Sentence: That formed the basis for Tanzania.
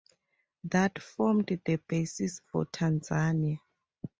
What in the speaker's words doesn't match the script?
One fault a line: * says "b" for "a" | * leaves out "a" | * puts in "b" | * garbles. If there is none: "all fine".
all fine